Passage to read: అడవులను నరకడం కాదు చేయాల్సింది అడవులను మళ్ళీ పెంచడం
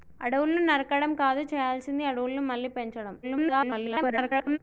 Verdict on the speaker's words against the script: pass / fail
fail